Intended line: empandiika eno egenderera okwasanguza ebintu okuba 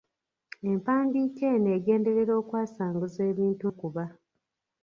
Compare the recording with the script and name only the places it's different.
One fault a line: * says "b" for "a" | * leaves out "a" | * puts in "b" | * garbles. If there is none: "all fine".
all fine